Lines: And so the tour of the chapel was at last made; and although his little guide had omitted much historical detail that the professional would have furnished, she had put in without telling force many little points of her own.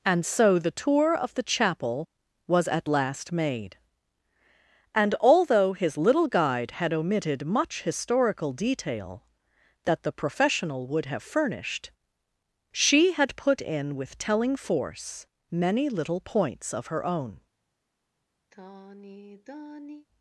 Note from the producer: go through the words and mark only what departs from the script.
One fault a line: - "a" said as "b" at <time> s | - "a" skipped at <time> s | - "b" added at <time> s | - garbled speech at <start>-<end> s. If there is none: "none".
- "without" said as "with" at 13.9 s